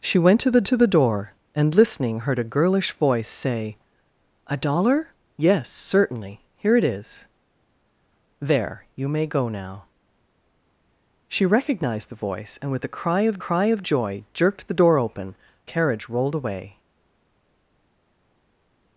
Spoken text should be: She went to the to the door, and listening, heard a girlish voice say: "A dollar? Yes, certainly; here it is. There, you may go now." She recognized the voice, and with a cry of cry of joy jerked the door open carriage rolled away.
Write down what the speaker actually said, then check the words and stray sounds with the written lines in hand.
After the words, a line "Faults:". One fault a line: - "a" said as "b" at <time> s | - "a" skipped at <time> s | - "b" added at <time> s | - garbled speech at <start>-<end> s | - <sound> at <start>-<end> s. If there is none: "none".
She went to the to the door, and listening, heard a girlish voice say: "A dollar? Yes, certainly; here it is. There, you may go now." She recognized the voice, and with a cry of cry of joy jerked the door open carriage rolled away.
Faults:
none